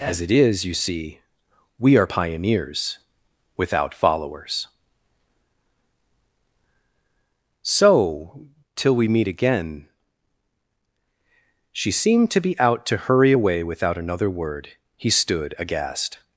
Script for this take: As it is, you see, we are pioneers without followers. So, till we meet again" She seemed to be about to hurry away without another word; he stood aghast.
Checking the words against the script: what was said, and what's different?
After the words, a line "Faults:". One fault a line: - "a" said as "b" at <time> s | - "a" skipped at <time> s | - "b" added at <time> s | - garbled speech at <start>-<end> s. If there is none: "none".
As it is, you see, we are pioneers without followers. So, till we meet again" She seemed to be out to hurry away without another word; he stood aghast.
Faults:
- "about" said as "out" at 12.6 s